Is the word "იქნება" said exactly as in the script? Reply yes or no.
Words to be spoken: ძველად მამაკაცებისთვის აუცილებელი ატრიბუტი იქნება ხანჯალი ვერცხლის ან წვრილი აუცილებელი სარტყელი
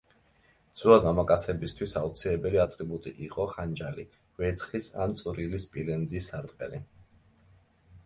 no